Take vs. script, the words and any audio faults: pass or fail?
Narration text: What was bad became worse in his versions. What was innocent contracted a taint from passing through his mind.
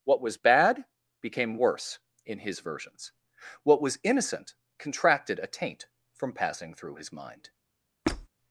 fail